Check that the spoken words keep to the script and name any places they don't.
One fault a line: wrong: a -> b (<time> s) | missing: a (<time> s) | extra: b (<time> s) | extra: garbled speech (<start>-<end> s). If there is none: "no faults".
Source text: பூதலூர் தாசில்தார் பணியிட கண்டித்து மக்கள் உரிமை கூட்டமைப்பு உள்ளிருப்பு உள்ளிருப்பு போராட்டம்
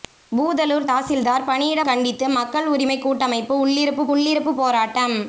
no faults